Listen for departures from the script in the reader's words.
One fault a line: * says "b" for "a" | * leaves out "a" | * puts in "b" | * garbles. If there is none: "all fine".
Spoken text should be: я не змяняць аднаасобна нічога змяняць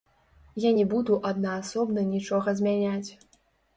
* says "буду" for "змяняць"